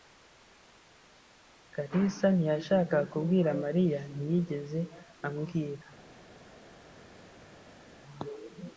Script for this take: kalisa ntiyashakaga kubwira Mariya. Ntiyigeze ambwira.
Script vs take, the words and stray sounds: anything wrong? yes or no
no